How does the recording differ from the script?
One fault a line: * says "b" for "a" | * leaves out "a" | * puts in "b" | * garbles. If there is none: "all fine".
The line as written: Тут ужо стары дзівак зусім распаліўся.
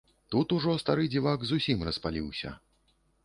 all fine